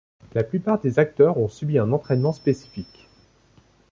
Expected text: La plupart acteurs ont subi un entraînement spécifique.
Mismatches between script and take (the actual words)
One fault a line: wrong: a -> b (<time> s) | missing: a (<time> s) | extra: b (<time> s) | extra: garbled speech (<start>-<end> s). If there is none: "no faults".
extra: des (0.8 s)